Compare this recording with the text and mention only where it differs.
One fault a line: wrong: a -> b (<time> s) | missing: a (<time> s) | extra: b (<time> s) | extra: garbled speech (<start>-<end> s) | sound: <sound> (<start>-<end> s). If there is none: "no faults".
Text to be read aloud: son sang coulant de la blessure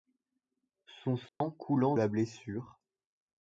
sound: dropout (1.3-1.4 s)
missing: de (1.9 s)